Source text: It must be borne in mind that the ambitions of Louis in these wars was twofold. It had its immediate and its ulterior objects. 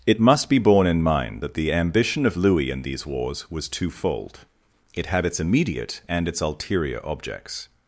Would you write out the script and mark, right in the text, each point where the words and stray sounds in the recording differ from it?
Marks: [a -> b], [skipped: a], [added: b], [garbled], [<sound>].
It must be borne in mind that the [ambitions -> ambition] of Louis in these wars was twofold. It had its immediate and its ulterior objects.